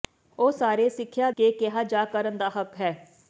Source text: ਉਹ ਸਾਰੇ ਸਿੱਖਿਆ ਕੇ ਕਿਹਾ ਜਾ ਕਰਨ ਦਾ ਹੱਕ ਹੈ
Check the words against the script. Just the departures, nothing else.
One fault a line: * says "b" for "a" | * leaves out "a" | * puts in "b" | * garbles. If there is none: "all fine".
all fine